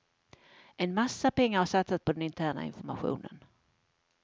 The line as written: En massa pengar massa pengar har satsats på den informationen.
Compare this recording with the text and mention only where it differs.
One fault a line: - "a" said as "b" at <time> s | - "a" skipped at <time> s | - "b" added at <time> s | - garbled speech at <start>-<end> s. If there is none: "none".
- "massa pengar" skipped at 1.6 s
- "interna" added at 2.2 s